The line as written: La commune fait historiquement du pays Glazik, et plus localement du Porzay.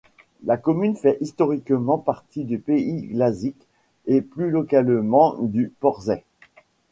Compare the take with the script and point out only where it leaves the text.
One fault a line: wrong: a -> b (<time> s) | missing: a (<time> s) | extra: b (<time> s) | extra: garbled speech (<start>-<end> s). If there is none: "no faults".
extra: partie (2.0 s)